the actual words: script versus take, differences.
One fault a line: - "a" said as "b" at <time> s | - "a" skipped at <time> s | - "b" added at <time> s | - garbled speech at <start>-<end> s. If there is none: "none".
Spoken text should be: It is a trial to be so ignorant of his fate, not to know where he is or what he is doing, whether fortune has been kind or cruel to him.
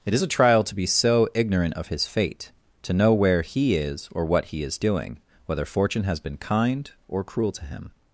- "not" skipped at 2.5 s